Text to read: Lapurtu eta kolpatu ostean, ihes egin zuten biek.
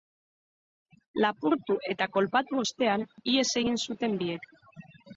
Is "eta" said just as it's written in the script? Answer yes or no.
yes